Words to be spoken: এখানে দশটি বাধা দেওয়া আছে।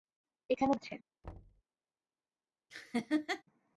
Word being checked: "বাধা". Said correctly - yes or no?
no